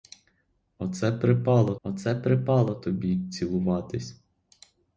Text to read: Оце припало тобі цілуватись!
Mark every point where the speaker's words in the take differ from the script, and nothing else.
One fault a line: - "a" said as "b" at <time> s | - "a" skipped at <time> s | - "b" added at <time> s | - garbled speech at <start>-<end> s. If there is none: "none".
- "оце припало" added at 1.8 s